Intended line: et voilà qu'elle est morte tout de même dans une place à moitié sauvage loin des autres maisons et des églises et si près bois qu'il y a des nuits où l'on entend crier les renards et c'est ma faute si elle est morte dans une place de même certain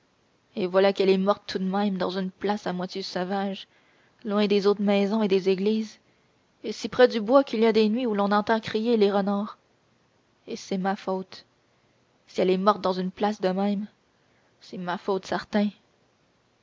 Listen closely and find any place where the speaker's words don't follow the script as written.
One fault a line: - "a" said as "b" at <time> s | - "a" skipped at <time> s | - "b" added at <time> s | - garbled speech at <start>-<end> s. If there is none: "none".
- "du" added at 7.1 s
- "c'est ma faute" added at 14.6 s